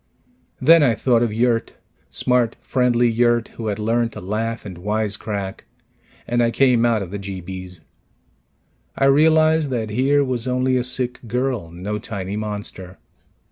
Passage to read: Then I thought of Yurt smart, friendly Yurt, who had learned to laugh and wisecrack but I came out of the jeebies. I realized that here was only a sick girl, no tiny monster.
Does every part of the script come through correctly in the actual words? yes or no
no